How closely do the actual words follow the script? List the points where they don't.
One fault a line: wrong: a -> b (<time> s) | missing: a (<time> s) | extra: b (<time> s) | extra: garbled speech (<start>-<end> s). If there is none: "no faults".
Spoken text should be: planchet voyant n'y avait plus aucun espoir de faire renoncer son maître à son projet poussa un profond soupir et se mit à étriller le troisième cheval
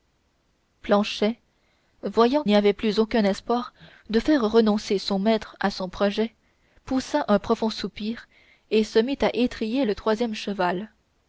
no faults